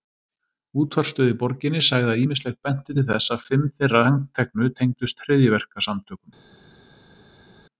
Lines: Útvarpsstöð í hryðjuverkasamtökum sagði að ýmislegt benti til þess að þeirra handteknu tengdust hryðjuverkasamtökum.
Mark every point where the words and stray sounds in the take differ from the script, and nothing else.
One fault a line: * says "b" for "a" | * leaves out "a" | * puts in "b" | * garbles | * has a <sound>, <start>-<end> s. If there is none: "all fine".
* says "borginni" for "hryðjuverkasamtökum"
* puts in "fimm"